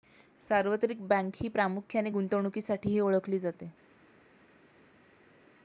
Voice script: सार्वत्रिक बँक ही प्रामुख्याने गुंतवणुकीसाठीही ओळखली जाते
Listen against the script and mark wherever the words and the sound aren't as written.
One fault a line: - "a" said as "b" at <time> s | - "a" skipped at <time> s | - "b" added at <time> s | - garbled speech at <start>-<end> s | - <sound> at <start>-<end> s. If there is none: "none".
none